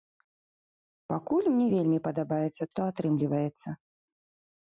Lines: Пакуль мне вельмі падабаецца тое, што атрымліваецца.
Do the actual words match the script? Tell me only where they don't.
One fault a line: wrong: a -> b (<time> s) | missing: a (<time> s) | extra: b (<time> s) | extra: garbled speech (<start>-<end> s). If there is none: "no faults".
missing: тое (2.6 s)